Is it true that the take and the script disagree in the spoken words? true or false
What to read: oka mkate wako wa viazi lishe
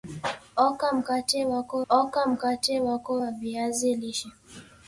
true